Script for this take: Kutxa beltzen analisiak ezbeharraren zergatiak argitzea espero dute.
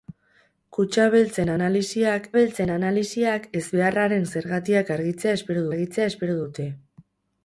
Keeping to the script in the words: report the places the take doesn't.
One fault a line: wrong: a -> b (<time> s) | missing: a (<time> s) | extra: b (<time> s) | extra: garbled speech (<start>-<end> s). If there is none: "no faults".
extra: beltzen analisiak (2.4 s)
extra: argitzea espero (5.7 s)